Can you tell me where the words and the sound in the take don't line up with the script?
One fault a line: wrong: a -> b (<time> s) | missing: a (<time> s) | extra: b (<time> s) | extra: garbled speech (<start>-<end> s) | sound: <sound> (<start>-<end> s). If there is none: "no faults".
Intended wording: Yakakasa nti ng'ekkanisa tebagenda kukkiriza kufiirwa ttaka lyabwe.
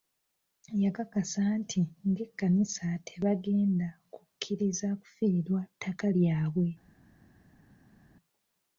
no faults